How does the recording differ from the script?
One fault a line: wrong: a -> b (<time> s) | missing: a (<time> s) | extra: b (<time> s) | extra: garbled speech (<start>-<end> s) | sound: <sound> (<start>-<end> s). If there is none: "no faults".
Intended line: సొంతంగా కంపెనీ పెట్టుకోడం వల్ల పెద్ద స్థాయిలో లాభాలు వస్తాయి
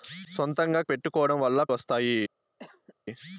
missing: కంపెనీ (0.8 s)
missing: పెద్ద స్థాయిలో లాభాలు (1.6 s)
sound: cough (2.6-2.9 s)